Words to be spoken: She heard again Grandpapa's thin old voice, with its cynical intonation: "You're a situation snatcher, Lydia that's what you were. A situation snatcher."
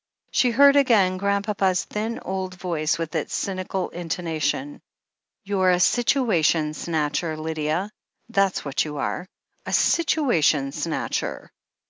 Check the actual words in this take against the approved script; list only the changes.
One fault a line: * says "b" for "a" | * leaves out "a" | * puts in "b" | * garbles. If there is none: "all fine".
* says "are" for "were"